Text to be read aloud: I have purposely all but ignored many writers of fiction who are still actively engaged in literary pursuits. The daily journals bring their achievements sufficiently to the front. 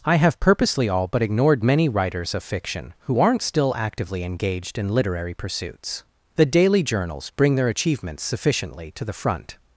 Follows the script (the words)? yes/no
no